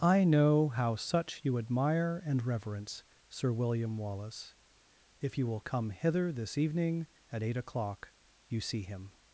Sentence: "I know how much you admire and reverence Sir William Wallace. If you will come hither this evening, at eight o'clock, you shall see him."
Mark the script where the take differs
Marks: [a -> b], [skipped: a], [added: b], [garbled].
"I know how [much -> such] you admire and reverence Sir William Wallace. If you will come hither this evening, at eight o'clock, you [skipped: shall] see him."